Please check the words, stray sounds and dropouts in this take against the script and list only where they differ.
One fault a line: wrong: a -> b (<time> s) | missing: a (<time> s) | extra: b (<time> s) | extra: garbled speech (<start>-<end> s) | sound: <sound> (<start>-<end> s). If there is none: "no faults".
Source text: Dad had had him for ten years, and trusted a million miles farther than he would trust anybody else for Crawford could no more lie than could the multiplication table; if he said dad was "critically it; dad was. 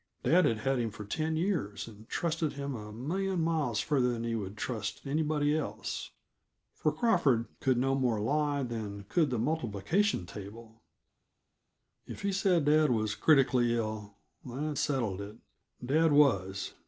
extra: him (2.5 s)
extra: ill that settled (13.8 s)